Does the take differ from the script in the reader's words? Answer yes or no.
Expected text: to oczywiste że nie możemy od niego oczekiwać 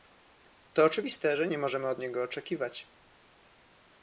no